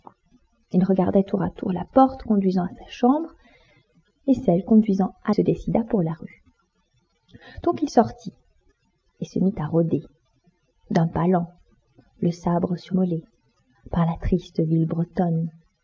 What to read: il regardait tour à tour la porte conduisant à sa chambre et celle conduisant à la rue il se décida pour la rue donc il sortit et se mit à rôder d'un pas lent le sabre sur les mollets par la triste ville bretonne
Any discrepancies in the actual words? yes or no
yes